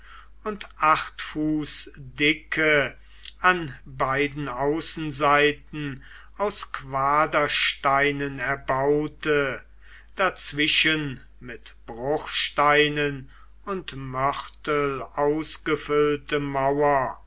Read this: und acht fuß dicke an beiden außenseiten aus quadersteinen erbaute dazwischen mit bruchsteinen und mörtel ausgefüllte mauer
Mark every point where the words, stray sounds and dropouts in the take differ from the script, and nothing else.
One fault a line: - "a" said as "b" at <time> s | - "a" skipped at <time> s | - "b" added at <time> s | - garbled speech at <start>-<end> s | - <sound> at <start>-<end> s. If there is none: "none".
none